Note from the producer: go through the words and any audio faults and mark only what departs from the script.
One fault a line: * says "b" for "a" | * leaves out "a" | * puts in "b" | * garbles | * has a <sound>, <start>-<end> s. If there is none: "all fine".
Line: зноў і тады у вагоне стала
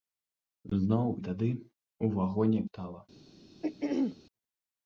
* has a throat clearing, 3.6-4.2 s